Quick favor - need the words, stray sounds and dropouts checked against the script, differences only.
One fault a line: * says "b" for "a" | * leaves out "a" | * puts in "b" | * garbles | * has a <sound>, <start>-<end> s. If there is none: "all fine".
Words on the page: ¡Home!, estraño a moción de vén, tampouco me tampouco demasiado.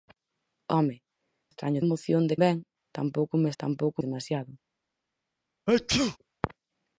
* has a sneeze, 5.7-6.2 s